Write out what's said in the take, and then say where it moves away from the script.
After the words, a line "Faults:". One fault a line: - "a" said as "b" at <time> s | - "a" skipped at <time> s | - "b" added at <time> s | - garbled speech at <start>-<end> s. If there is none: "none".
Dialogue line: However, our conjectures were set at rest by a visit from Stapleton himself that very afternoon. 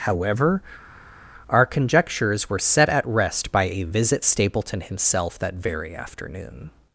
However, our conjectures were set at rest by a visit Stapleton himself that very afternoon.
Faults:
- "from" skipped at 4.3 s